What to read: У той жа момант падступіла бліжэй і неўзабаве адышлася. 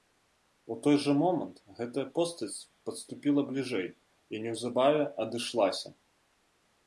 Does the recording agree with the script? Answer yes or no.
no